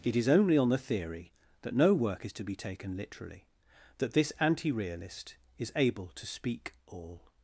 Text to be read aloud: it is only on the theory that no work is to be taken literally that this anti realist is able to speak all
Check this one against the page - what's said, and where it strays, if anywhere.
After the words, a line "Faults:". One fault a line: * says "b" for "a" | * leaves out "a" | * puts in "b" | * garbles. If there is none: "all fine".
it is only on the theory that no work is to be taken literally that this anti realist is able to speak all
Faults:
all fine